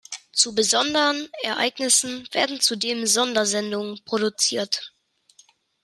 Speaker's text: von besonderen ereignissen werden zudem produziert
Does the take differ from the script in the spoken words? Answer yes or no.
yes